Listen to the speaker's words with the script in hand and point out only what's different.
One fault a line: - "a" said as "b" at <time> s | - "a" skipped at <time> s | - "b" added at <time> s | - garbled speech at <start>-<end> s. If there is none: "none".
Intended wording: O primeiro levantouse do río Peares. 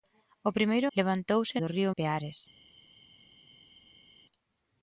none